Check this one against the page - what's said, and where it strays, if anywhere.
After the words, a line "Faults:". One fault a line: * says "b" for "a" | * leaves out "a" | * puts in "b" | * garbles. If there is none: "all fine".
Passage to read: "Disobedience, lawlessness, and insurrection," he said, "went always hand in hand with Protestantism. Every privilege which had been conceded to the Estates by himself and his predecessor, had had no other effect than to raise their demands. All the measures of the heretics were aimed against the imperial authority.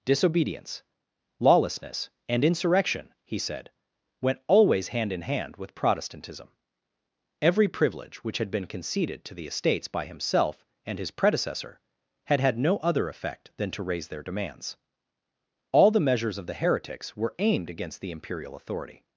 "Disobedience, lawlessness, and insurrection," he said, "went always hand in hand with Protestantism. Every privilege which had been conceded to the Estates by himself and his predecessor, had had no other effect than to raise their demands. All the measures of the heretics were aimed against the imperial authority.
Faults:
all fine